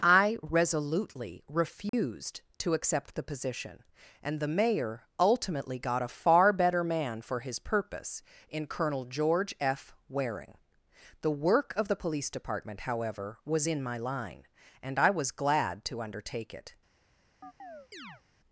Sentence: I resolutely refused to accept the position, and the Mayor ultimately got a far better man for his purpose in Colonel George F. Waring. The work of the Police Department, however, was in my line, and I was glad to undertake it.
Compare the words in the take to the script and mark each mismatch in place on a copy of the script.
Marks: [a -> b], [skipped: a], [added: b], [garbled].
I resolutely refused to accept the position, and the Mayor ultimately got a far better man for his purpose in Colonel George F. Waring. The work of the Police Department, however, was in my line, and I was glad to undertake it.